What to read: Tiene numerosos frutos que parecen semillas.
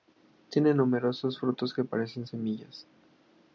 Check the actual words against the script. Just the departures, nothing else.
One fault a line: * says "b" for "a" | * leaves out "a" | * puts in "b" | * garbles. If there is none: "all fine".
all fine